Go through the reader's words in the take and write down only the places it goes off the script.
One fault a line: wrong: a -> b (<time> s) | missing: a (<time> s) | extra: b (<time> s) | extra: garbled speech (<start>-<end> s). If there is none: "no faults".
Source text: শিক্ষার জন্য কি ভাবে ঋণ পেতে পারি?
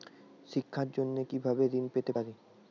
no faults